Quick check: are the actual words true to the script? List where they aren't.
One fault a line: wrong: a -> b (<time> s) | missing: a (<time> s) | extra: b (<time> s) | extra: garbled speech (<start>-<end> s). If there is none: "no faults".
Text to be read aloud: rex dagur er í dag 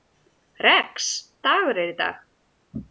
no faults